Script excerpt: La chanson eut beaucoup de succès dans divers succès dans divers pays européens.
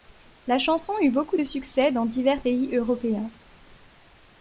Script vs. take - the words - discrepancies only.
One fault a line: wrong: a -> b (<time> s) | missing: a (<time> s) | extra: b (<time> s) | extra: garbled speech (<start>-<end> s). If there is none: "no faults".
missing: succès dans divers (2.4 s)